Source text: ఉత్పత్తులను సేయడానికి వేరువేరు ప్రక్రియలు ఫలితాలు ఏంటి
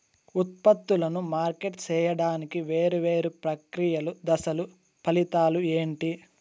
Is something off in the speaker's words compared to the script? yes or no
yes